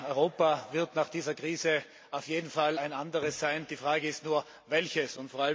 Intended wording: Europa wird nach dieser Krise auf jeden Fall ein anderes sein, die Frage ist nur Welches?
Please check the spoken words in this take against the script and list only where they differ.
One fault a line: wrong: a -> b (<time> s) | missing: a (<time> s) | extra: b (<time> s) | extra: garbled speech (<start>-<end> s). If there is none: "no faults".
no faults